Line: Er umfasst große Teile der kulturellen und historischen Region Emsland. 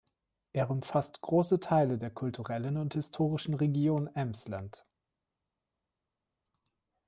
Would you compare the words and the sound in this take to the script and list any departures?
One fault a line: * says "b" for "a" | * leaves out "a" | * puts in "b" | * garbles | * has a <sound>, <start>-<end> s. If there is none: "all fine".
all fine